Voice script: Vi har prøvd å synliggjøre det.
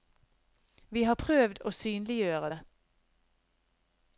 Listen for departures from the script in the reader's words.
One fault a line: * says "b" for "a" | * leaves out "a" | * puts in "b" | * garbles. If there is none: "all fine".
all fine